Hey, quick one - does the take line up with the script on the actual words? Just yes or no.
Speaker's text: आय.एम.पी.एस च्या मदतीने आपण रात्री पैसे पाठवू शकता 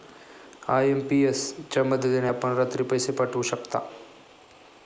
yes